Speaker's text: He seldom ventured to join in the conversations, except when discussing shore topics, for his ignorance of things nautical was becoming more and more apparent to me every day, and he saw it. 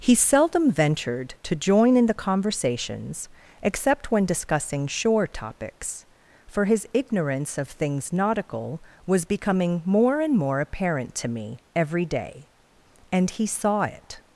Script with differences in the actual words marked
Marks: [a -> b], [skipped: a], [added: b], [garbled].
He seldom ventured to join in the conversations, except when discussing shore topics, for his ignorance of things nautical was becoming more and more apparent to me every day, and he saw it.